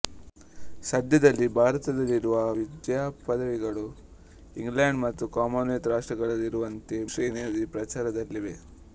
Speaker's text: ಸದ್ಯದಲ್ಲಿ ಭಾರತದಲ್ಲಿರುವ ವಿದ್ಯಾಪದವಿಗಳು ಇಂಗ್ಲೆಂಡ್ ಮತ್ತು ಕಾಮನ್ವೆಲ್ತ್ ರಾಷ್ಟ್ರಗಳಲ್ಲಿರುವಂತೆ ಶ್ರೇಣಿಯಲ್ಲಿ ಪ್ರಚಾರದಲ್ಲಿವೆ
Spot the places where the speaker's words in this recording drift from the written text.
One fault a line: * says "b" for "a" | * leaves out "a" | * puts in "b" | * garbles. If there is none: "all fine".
all fine